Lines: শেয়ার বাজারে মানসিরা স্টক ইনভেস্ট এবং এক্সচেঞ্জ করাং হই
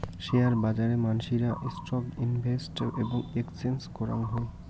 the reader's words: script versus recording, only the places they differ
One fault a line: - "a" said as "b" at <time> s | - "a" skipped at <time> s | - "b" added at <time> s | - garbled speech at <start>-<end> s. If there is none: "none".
none